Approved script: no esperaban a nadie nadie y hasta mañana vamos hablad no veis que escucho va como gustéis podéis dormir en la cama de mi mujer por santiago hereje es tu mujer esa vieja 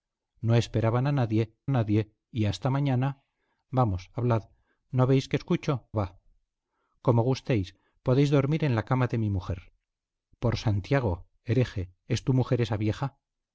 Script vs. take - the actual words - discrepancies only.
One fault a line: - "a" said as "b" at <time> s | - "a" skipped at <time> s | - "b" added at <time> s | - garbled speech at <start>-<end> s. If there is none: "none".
none